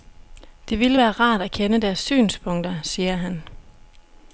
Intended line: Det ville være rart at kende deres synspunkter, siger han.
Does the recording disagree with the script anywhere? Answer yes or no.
no